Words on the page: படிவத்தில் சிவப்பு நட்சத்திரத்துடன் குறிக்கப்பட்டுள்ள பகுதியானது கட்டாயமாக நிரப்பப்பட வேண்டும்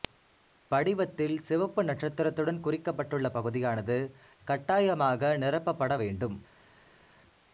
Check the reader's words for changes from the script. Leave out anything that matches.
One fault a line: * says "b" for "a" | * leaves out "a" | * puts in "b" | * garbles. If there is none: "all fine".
all fine